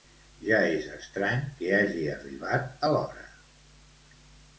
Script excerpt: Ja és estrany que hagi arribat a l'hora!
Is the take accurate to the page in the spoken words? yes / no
yes